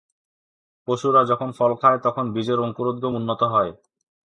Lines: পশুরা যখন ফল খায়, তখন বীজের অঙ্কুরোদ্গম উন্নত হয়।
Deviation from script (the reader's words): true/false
false